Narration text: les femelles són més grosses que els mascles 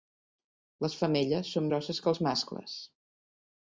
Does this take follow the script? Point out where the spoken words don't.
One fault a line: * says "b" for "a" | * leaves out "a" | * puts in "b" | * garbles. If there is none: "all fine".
* leaves out "més"